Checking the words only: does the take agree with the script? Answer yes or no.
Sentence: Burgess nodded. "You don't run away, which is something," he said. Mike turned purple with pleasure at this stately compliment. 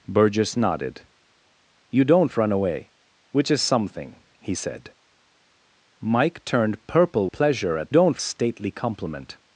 no